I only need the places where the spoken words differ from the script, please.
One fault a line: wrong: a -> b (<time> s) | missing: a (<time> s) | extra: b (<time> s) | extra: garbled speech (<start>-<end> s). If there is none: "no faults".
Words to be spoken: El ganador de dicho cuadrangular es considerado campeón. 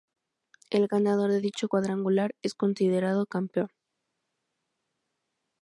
no faults